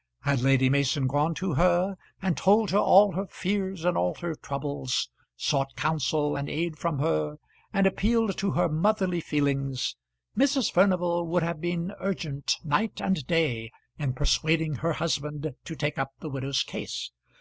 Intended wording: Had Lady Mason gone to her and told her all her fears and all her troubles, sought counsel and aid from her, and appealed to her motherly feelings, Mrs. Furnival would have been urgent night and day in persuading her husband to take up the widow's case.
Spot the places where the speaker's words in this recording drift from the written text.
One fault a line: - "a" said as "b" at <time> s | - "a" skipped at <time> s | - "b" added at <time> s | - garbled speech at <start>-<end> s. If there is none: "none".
none